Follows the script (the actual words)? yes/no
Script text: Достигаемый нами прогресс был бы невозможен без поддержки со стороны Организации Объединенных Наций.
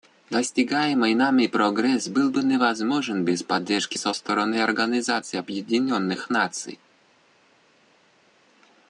yes